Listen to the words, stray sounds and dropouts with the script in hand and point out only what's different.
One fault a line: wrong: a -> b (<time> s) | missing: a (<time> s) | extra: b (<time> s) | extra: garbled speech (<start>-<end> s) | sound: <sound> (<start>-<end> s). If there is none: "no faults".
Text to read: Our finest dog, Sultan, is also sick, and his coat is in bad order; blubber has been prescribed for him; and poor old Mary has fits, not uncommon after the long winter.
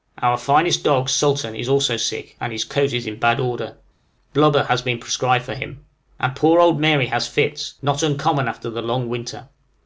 no faults